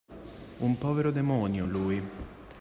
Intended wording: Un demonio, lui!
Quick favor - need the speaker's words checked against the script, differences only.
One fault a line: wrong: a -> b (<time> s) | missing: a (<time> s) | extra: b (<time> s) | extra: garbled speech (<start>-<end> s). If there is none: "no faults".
extra: povero (0.8 s)